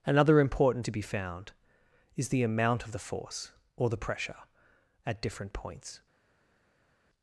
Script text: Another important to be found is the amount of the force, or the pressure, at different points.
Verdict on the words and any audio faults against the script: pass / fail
pass